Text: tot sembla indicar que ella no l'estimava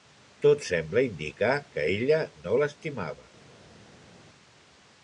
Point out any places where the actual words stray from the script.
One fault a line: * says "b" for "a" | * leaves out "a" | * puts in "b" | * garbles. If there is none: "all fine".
all fine